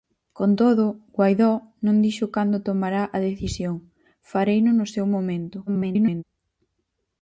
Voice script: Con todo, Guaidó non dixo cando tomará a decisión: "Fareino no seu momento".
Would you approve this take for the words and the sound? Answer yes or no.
no